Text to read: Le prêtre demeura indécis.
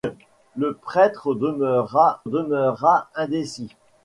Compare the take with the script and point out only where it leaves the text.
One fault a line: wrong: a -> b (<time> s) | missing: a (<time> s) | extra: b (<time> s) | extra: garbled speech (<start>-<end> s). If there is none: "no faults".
extra: demeura (2.3 s)